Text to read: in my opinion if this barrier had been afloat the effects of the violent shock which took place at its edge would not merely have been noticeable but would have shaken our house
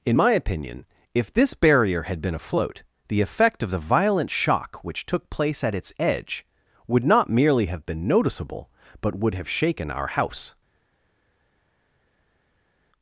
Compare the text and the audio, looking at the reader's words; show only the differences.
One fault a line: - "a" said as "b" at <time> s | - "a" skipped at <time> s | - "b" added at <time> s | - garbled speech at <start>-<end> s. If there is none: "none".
- "effects" said as "effect" at 3.2 s